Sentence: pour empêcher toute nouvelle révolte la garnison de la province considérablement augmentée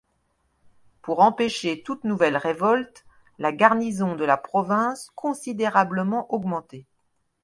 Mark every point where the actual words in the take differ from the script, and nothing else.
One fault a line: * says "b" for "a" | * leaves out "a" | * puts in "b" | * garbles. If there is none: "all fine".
all fine